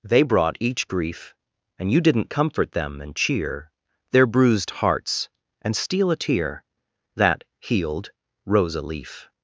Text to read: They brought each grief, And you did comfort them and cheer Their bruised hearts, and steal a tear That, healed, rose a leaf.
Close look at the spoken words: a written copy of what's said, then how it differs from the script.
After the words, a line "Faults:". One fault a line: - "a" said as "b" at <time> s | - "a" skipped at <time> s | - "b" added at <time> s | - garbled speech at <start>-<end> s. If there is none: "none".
They brought each grief, And you didn't comfort them and cheer Their bruised hearts, and steal a tear That, healed, rose a leaf.
Faults:
- "did" said as "didn't" at 2.0 s